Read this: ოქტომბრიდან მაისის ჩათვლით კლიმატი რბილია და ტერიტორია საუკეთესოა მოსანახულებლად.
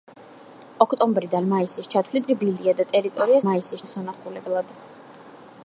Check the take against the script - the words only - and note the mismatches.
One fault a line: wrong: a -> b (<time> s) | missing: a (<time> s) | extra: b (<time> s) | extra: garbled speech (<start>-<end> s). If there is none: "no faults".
missing: კლიმატი (2.3 s)
wrong: საუკეთესოა -> მაისის (3.5 s)